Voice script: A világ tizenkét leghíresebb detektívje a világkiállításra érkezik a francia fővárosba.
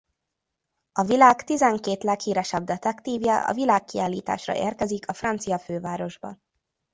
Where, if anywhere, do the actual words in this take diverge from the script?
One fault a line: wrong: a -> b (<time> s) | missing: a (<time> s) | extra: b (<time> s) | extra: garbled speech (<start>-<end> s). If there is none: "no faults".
no faults